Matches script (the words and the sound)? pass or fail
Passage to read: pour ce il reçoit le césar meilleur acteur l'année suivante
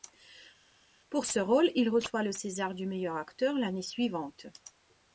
fail